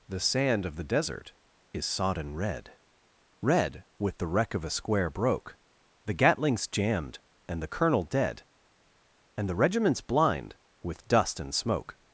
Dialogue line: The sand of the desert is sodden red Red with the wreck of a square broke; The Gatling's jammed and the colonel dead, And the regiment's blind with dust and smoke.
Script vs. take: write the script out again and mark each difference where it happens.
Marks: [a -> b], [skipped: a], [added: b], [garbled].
The sand of the desert is sodden red Red with the wreck of a square broke; The Gatling's jammed and the colonel dead, And the regiment's blind with dust and smoke.